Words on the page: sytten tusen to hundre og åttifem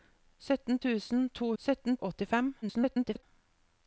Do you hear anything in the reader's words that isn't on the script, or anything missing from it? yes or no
yes